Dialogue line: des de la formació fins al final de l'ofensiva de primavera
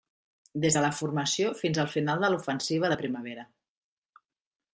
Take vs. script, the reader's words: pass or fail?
pass